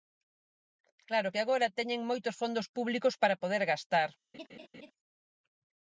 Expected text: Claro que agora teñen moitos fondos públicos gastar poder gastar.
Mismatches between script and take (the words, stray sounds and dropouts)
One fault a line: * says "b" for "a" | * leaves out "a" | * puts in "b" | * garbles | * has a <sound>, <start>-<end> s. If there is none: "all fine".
* says "para" for "gastar"
* has a laugh, 4.3-4.9 s